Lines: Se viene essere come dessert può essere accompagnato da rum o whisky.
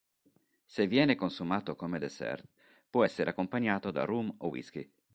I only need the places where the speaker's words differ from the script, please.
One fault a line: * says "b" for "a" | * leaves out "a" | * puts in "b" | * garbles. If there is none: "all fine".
* says "consumato" for "essere"